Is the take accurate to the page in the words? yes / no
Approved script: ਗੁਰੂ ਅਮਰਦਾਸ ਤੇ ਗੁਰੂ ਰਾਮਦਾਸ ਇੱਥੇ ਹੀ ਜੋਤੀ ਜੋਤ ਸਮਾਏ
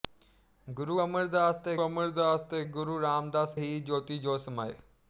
no